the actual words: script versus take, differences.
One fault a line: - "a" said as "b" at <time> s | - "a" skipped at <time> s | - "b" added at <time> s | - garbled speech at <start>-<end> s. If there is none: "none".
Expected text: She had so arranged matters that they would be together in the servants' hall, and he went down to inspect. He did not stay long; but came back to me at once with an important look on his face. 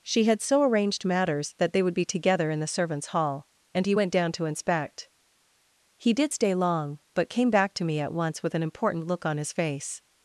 - "not" skipped at 6.3 s